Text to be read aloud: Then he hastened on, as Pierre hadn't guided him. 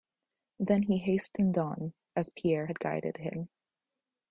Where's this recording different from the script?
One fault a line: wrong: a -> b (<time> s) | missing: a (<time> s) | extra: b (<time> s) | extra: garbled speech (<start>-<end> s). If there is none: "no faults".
wrong: hadn't -> had (2.6 s)